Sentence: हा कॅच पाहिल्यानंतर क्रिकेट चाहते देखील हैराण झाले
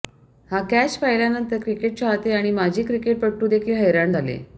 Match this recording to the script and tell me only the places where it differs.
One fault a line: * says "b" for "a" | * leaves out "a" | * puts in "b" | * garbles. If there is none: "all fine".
* puts in "आणि माजी क्रिकेटपटू"